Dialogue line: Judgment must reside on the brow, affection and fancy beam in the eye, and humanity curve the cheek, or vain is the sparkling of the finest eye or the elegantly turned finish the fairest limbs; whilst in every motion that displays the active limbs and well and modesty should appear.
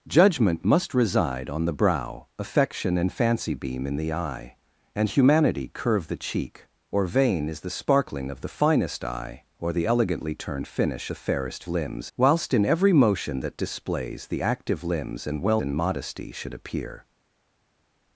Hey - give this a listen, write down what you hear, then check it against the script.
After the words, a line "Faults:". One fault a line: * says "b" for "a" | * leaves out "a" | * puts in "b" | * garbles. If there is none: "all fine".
Judgment must reside on the brow, affection and fancy beam in the eye, and humanity curve the cheek, or vain is the sparkling of the finest eye or the elegantly turned finish the fairest limbs; whilst in every motion that displays the active limbs and well and modesty should appear.
Faults:
all fine